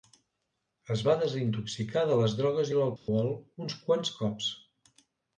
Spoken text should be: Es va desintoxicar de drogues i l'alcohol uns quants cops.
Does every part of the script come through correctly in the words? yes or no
no